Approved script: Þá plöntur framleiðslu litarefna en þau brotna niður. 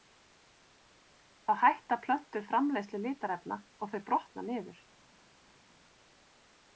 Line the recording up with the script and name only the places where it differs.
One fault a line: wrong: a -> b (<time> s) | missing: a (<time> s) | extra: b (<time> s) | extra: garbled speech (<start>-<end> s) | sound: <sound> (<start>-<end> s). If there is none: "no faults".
extra: hætta (1.6 s)
wrong: en -> og (3.9 s)